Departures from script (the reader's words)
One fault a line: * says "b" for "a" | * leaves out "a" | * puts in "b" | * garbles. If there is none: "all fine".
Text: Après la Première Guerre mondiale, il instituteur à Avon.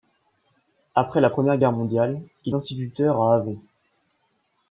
all fine